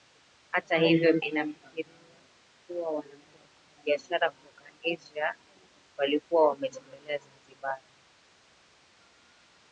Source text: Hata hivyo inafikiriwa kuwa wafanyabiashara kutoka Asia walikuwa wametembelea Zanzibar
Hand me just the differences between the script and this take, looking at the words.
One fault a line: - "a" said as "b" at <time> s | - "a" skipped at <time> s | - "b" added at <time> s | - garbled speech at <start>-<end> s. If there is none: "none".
none